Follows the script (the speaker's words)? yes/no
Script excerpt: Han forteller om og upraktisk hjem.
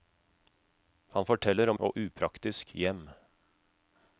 yes